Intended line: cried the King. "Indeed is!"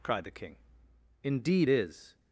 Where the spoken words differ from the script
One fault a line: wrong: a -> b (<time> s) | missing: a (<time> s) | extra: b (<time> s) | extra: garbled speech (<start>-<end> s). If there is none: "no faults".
no faults